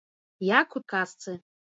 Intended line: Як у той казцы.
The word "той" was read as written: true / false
false